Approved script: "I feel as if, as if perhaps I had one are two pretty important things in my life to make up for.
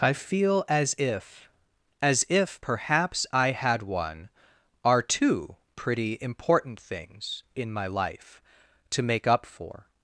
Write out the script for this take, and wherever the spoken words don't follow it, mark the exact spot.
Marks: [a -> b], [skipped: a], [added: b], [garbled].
"I feel as if, as if perhaps I had one are two pretty important things in my life to make up for.